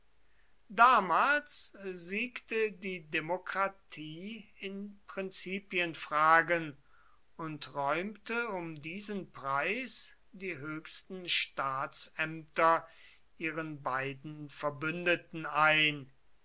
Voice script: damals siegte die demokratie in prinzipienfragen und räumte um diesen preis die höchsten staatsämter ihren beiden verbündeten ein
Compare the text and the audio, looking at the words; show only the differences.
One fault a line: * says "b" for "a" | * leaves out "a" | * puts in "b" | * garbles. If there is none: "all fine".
all fine